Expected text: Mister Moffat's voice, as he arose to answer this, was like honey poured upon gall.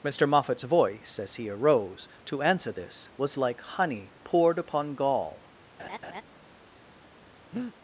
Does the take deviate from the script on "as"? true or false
false